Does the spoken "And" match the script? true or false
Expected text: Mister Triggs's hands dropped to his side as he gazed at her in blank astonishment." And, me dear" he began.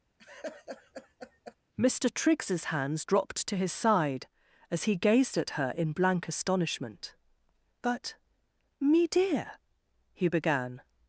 false